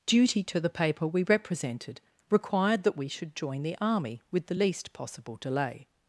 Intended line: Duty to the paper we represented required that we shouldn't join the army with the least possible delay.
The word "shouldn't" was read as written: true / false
false